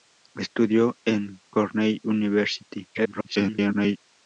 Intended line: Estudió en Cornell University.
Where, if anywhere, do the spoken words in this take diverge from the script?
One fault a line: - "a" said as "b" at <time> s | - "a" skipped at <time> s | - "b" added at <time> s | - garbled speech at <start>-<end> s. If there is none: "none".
- garbled speech at 2.9-4.0 s